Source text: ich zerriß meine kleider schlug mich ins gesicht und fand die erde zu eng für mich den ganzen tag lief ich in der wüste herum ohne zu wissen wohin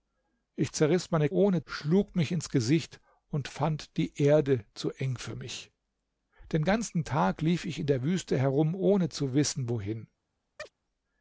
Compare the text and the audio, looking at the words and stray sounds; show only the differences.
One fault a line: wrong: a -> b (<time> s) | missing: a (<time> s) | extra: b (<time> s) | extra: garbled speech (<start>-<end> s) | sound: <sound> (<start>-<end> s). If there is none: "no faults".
wrong: kleider -> ohne (1.3 s)
sound: chirp (10.6-10.7 s)